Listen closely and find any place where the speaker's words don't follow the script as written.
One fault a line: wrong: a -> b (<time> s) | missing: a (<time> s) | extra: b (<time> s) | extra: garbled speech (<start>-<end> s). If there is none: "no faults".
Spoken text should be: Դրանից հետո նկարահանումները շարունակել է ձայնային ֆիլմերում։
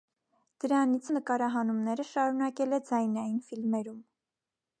missing: հետո (1.1 s)